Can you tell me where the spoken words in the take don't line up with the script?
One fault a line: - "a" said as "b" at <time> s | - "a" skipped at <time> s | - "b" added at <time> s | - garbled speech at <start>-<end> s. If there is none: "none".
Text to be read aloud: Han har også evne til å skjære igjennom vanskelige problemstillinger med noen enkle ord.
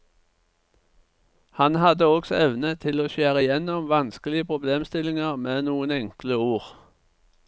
- "har" said as "hadde" at 1.8 s